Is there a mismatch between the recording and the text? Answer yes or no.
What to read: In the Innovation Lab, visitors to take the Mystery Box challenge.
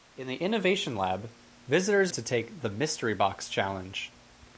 no